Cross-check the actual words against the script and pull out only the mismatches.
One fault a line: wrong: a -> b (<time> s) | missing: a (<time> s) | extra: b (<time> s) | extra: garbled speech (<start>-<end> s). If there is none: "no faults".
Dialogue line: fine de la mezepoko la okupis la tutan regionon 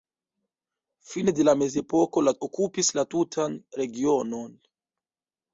no faults